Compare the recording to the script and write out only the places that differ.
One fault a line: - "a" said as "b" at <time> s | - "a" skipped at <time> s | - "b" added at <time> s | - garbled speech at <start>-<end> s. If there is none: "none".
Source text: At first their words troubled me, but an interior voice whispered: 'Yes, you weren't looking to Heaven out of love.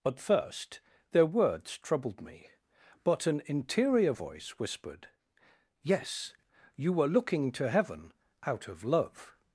- "weren't" said as "were" at 6.9 s